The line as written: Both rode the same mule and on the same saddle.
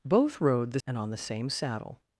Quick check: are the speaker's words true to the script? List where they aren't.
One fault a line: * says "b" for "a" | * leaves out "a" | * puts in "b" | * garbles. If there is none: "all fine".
* leaves out "same mule"